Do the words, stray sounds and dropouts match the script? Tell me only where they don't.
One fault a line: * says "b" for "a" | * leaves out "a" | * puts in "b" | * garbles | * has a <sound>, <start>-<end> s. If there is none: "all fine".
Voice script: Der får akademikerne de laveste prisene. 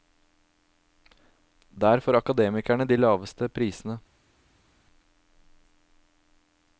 all fine